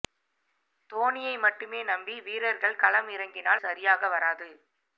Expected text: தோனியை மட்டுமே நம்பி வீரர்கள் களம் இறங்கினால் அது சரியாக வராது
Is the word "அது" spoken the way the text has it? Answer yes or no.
no